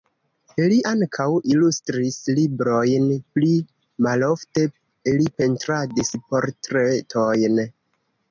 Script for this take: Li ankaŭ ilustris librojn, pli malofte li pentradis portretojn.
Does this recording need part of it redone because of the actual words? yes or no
no